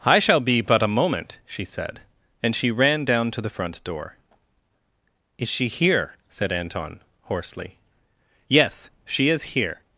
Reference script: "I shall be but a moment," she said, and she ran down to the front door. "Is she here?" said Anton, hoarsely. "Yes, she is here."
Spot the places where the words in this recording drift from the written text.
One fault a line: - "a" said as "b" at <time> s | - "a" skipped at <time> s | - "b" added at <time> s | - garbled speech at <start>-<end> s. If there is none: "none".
none